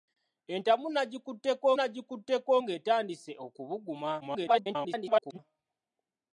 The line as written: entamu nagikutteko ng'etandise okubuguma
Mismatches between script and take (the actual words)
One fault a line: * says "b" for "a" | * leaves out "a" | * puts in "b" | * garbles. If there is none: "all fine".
* puts in "nagikutteko"
* garbles